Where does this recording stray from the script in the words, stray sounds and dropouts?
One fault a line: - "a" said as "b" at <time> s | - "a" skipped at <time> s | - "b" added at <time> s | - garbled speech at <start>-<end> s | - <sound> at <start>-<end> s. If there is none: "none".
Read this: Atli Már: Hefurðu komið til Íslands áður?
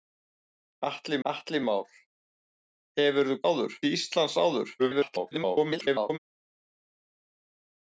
- "atli" added at 1.3 s
- "komið" said as "áður" at 3.5 s
- garbled speech at 4.8-6.2 s